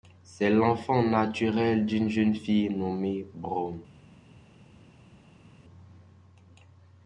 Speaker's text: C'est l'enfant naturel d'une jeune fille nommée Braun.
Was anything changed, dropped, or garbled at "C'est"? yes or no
no